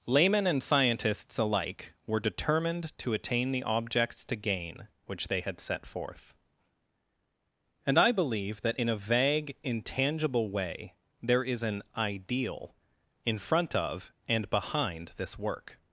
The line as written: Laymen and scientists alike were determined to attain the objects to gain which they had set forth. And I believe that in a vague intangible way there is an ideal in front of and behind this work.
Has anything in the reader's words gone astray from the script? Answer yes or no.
no